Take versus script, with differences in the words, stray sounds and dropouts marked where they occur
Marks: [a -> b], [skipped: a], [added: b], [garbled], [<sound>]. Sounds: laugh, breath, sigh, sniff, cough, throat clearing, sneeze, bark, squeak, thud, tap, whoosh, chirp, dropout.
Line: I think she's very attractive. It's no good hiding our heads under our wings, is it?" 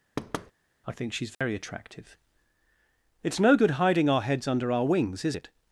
[thud] I think she's very [dropout] attractive. It's no good hiding our heads under our wings, is it?"